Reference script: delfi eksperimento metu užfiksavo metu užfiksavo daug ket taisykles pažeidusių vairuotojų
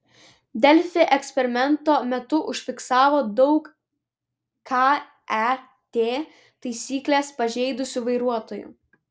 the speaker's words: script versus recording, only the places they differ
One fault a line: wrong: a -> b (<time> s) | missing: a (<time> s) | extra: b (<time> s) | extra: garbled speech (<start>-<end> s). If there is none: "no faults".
missing: metu užfiksavo (3.2 s)